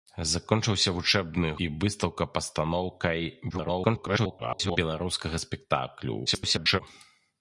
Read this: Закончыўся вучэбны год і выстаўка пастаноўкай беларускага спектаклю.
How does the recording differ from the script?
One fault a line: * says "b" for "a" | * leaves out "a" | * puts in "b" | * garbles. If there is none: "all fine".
* leaves out "год"
* garbles
* garbles